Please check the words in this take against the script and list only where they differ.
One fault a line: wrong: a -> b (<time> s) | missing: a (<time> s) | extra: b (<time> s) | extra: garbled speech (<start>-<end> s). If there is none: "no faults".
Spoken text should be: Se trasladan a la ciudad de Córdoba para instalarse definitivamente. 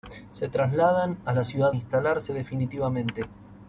missing: de Córdoba para (1.8 s)